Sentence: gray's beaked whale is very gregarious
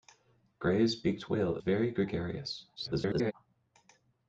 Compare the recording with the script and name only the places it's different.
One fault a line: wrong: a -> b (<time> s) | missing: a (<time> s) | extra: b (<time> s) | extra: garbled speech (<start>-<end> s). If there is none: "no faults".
missing: is (1.6 s)
extra: garbled speech (2.8-3.3 s)